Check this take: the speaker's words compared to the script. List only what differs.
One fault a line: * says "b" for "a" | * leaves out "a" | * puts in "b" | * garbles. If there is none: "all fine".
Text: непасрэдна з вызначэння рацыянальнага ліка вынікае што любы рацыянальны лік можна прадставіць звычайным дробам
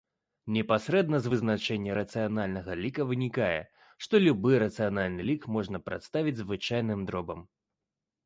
all fine